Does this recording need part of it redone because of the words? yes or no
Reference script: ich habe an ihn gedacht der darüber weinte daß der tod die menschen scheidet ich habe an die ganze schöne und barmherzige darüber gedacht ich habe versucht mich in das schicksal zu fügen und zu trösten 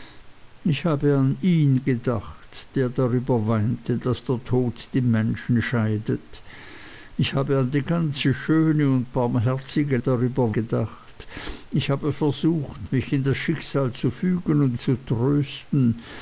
no